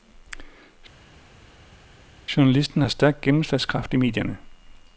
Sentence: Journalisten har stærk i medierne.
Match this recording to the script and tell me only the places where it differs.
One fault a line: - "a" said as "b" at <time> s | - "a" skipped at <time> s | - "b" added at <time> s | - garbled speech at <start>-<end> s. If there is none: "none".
- "gennemslagskraft" added at 3.2 s